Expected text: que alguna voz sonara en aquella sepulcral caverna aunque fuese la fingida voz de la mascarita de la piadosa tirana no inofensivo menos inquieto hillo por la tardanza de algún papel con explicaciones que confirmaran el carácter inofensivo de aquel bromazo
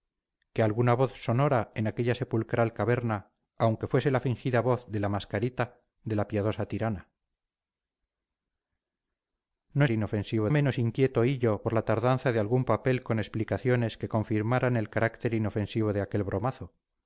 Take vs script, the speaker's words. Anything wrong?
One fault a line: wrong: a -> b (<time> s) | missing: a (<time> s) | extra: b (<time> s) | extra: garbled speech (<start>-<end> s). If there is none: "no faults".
no faults